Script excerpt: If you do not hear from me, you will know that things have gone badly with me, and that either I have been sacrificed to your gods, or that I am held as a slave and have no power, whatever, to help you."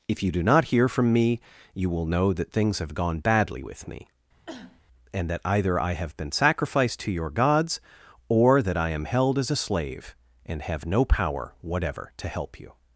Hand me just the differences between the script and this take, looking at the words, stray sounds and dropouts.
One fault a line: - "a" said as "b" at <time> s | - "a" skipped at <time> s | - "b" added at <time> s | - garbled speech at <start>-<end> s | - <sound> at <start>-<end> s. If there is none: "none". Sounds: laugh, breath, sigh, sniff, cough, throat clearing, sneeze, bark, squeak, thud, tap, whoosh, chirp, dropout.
- cough at 4.5-4.8 s